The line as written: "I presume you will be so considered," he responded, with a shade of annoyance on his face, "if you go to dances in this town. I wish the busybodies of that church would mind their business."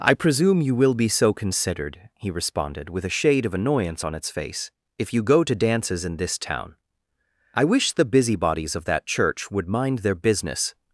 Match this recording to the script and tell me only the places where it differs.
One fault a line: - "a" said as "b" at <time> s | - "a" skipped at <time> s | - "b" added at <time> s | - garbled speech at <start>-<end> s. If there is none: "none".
- "his" said as "its" at 4.2 s